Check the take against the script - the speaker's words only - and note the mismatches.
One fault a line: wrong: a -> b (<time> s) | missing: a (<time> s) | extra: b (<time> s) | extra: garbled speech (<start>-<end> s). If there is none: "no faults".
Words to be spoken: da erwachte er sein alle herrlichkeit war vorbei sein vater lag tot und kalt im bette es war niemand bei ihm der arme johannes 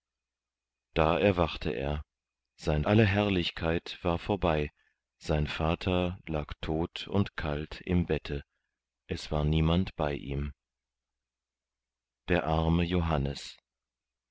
no faults